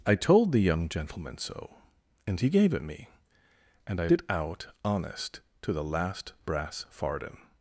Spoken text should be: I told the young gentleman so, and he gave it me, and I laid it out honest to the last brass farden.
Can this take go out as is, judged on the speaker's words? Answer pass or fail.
fail